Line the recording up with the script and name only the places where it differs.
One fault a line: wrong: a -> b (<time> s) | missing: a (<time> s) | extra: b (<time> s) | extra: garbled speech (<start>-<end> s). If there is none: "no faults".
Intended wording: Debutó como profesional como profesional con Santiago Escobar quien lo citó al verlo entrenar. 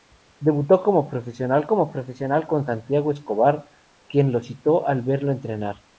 no faults